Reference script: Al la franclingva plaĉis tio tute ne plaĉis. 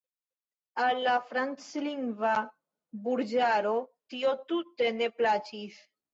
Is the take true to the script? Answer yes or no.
no